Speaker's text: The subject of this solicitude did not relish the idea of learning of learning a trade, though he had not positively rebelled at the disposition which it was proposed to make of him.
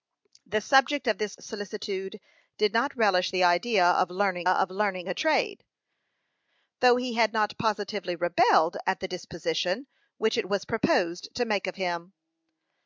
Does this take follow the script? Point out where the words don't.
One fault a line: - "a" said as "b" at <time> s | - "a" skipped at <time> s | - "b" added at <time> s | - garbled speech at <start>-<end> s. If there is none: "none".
none